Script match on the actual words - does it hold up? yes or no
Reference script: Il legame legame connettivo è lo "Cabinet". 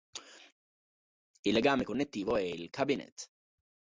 no